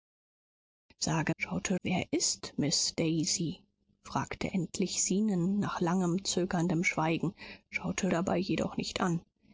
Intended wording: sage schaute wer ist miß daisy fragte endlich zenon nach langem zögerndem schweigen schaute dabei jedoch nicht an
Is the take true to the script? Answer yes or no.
yes